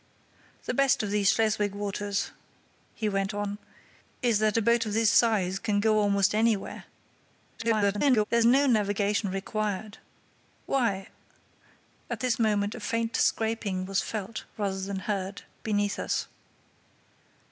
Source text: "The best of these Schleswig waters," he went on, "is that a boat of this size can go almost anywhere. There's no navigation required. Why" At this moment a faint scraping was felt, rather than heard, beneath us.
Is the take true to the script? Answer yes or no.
no